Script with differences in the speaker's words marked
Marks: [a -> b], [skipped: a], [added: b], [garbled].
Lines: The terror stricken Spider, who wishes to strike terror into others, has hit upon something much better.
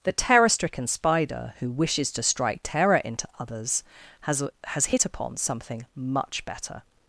The terror stricken Spider, who wishes to strike terror into others, has [added: has] hit upon something much better.